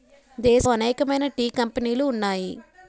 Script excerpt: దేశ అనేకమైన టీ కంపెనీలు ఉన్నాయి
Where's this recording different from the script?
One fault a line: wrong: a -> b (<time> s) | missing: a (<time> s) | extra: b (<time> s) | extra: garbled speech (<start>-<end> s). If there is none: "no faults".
no faults